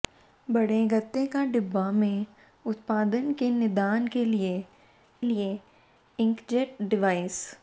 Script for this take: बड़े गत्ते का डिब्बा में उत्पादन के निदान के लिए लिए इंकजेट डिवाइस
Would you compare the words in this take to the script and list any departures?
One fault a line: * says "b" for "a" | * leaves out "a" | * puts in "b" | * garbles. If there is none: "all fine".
all fine